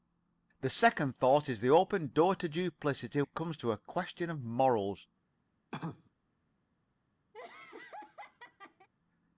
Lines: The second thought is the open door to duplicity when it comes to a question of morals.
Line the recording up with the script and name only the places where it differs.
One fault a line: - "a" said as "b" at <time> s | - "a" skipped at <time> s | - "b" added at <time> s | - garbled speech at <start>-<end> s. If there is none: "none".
- "when" skipped at 3.2 s